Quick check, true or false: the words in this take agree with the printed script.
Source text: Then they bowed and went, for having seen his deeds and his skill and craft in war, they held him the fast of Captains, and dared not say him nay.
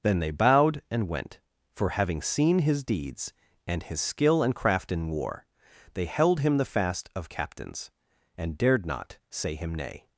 true